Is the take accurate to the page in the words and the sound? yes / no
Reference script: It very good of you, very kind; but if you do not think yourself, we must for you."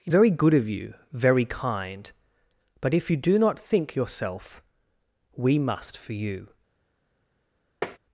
no